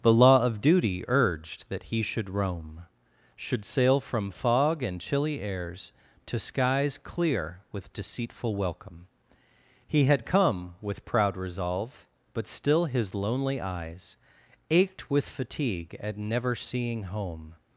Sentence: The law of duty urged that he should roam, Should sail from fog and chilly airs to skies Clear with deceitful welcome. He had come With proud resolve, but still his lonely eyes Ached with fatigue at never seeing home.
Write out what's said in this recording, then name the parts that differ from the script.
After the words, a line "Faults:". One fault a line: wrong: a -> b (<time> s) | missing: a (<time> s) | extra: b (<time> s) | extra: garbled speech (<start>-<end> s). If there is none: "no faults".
The law of duty urged that he should roam, Should sail from fog and chilly airs to skies Clear with deceitful welcome. He had come With proud resolve, but still his lonely eyes Ached with fatigue at never seeing home.
Faults:
no faults